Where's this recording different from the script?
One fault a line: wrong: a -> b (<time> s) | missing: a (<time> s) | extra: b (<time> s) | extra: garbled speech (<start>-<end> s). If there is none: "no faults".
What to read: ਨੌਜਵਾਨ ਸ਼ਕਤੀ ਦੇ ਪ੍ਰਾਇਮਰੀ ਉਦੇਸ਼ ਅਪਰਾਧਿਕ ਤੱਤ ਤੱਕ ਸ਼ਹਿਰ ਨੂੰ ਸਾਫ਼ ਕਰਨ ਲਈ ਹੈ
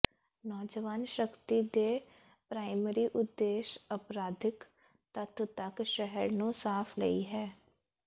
missing: ਕਰਨ (7.0 s)